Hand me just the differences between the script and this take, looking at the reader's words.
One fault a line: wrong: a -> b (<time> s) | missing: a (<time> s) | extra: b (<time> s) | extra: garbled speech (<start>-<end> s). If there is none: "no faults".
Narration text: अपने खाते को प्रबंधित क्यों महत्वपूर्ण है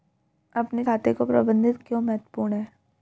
no faults